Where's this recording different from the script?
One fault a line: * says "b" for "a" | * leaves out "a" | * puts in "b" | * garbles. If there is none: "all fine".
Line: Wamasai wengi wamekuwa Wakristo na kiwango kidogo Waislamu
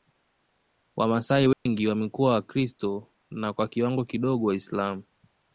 * puts in "kwa"